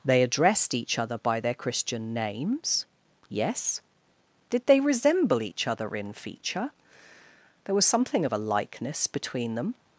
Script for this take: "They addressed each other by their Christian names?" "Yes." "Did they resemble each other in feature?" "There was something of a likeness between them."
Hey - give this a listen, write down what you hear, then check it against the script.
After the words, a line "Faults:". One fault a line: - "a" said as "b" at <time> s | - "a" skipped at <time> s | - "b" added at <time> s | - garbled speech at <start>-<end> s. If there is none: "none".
"They addressed each other by their Christian names?" "Yes." "Did they resemble each other in feature?" "There was something of a likeness between them."
Faults:
none